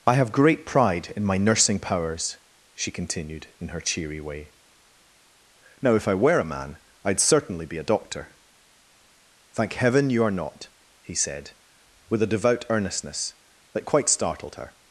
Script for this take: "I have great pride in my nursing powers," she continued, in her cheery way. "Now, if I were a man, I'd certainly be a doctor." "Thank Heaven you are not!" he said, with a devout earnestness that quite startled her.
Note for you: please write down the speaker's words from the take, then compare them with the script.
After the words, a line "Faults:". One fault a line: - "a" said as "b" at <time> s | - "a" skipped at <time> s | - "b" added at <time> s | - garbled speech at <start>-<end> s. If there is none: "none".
"I have great pride in my nursing powers," she continued, in her cheery way. "Now, if I were a man, I'd certainly be a doctor." "Thank Heaven you are not!" he said, with a devout earnestness that quite startled her.
Faults:
none